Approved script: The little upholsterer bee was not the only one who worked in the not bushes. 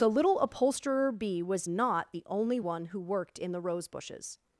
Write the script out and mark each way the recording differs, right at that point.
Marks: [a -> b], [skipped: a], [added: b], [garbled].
The little upholsterer bee was not the only one who worked in the [not -> rose] bushes.